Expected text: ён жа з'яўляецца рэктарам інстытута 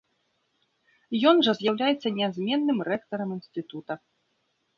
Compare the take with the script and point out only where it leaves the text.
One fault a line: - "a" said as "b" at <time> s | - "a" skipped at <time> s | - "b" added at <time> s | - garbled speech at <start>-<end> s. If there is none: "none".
- "нязменным" added at 2.2 s